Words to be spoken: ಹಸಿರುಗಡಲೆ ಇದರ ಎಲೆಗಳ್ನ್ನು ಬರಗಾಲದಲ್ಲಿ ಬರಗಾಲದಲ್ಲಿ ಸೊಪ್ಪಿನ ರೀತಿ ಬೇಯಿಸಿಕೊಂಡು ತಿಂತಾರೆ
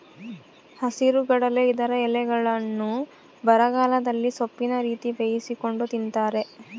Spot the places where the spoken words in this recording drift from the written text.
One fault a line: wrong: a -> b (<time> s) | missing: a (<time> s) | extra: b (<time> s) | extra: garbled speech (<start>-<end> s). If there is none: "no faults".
missing: ಬರಗಾಲದಲ್ಲಿ (4.3 s)